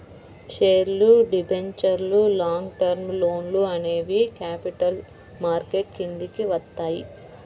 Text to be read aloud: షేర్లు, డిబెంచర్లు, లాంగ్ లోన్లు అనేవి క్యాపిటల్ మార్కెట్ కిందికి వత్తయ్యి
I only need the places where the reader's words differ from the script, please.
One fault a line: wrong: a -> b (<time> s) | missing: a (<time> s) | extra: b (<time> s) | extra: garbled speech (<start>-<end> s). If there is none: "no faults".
extra: టర్మ్ (2.8 s)